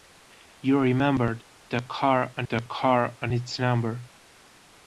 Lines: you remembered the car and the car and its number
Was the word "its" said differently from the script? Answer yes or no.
no